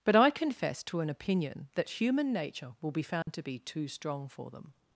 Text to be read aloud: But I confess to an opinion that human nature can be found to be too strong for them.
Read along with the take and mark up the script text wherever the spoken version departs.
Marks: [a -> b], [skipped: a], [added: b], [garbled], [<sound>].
But I confess to an opinion that human nature [can -> will] be found [dropout] to be too strong for them.